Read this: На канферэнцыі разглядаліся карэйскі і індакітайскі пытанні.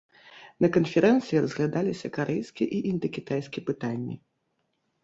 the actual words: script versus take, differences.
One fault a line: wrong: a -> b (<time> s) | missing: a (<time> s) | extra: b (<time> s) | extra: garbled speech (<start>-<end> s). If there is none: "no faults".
no faults